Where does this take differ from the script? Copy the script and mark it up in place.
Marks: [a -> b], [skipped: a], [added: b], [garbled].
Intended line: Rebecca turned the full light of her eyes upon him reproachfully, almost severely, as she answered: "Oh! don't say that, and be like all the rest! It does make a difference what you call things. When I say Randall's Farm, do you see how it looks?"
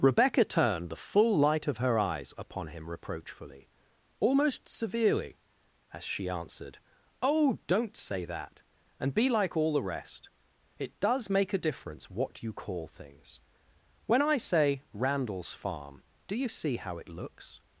Rebecca turned the full light of her eyes upon him reproachfully, almost severely, as she answered: "Oh! don't say that, and be like all the rest! It does make a difference what you call things. When I say Randall's Farm, do you see how it looks?"